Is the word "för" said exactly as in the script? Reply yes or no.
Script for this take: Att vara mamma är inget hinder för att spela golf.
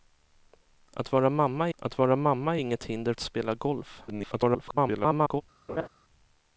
no